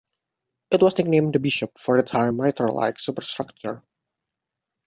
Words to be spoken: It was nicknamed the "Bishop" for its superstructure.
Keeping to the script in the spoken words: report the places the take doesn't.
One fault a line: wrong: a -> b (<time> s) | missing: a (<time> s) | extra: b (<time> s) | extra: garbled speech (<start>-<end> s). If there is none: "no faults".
extra: high mitre like (2.1 s)